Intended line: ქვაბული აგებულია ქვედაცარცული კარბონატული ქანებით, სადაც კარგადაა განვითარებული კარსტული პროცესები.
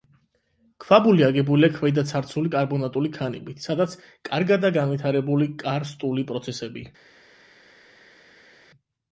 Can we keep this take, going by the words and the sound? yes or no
yes